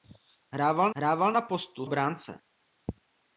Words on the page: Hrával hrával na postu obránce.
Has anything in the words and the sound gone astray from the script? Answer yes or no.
no